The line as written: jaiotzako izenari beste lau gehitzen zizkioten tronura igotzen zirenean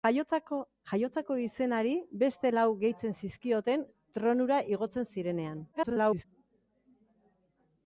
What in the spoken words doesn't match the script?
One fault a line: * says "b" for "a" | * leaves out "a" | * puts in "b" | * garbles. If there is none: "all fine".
* garbles